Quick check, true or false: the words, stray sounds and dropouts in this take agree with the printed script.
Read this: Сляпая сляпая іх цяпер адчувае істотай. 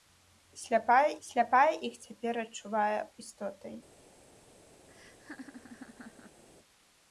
false